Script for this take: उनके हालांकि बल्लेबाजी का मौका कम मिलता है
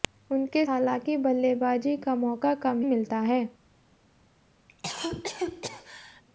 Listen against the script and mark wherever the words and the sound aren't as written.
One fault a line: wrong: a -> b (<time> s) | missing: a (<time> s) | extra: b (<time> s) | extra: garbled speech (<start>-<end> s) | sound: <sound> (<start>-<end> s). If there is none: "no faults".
sound: cough (4.7-6.2 s)